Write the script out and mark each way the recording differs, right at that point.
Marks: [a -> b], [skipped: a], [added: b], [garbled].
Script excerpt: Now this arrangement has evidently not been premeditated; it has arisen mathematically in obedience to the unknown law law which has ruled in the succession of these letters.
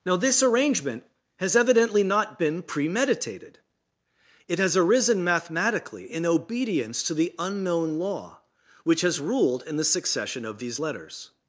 Now this arrangement has evidently not been premeditated; it has arisen mathematically in obedience to the unknown law [skipped: law] which has ruled in the succession of these letters.